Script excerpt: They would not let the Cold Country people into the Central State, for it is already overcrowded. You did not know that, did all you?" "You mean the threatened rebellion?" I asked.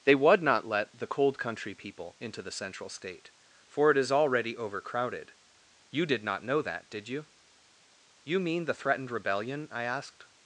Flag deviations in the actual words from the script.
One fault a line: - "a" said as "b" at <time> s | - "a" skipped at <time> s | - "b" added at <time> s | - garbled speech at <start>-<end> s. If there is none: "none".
- "all" skipped at 7.1 s